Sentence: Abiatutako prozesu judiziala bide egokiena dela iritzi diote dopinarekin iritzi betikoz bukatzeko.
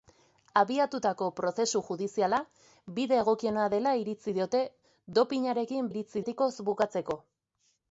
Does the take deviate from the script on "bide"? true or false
false